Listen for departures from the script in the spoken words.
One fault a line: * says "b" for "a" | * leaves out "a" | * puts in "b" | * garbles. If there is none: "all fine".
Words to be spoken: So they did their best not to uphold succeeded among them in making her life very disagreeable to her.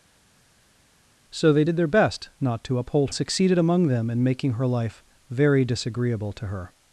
all fine